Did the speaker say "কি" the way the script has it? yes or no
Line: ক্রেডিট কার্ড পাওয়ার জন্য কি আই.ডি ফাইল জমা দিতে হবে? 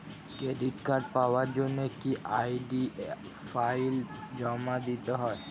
yes